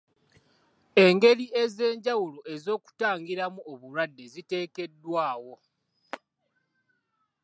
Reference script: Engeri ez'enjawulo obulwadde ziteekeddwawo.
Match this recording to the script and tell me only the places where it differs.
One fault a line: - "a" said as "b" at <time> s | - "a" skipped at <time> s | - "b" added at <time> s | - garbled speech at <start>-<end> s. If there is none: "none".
- "ez'okutangiramu" added at 2.5 s